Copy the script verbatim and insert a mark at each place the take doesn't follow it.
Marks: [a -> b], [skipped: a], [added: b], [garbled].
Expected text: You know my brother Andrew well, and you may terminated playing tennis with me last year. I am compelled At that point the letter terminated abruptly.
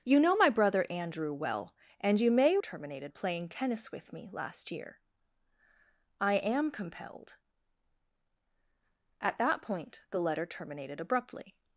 You know my brother Andrew well, and you may terminated playing tennis with me last year. I am compelled At that point the letter terminated abruptly.